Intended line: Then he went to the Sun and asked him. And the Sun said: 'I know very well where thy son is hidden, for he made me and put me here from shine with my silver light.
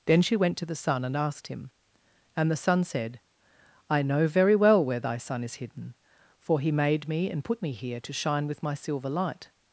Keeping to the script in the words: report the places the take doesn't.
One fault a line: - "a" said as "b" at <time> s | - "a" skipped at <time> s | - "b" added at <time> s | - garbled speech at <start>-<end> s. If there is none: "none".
- "he" said as "she" at 0.2 s
- "from" said as "to" at 8.0 s